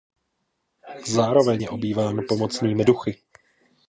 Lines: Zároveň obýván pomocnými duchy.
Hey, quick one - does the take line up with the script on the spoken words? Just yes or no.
no